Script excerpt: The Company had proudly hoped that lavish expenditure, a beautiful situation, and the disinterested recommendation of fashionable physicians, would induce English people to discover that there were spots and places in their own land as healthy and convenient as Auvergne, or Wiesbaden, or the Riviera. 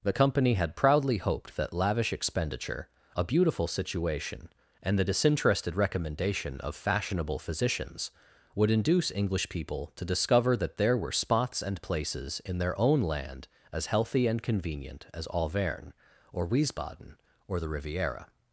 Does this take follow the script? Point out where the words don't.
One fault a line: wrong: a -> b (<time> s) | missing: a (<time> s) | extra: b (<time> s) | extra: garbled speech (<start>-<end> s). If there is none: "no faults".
no faults